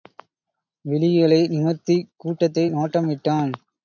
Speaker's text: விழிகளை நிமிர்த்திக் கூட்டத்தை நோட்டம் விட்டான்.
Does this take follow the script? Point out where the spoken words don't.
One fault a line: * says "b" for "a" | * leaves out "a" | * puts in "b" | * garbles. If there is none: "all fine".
all fine